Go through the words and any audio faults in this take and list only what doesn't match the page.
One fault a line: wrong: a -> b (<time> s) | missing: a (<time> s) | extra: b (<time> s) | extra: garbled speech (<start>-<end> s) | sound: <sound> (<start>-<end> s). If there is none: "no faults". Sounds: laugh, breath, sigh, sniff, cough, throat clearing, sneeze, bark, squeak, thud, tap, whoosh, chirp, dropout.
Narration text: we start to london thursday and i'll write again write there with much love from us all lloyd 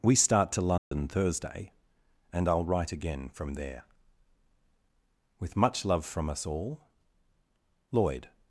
sound: dropout (0.8-0.9 s)
wrong: write -> from (3.3 s)